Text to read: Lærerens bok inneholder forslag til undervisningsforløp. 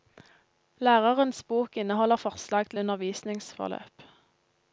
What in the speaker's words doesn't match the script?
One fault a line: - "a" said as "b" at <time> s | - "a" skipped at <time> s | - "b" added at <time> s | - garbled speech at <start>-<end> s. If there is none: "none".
none